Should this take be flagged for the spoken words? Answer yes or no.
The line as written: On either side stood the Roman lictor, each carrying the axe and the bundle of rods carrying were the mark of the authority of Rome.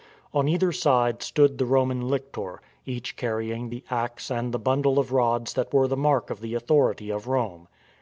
yes